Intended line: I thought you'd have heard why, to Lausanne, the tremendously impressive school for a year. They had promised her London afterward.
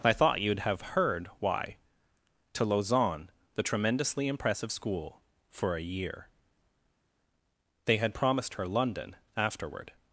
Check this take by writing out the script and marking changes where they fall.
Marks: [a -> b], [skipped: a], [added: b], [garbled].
I thought you'd have heard why, to Lausanne, the tremendously impressive school for a year. They had promised her London afterward.